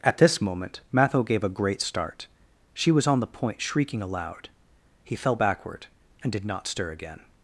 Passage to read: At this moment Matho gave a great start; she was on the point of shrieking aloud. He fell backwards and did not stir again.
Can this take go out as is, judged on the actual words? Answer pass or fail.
fail